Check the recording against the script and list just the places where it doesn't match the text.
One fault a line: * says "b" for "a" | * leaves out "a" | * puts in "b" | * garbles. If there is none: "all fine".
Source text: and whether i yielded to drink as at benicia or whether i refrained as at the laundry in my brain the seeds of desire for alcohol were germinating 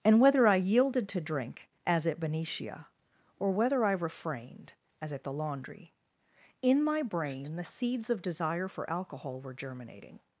all fine